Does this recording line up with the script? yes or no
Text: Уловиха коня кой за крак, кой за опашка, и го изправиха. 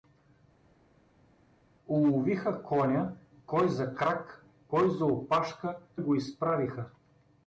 yes